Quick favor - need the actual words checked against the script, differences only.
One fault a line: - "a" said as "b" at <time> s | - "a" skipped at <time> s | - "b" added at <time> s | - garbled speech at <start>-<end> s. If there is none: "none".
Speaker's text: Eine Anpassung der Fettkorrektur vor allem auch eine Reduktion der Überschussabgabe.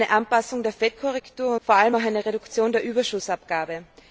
none